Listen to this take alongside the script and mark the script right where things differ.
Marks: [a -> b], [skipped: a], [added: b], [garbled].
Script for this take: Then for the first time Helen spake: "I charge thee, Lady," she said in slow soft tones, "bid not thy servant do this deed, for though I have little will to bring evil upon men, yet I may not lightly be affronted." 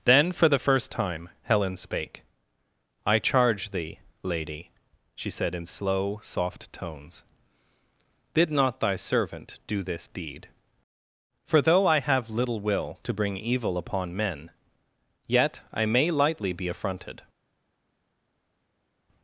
Then for the first time Helen spake: "I charge thee, Lady," she said in slow soft tones, "bid not thy servant do this deed, for though I have little will to bring evil upon men, yet I may [skipped: not] lightly be affronted."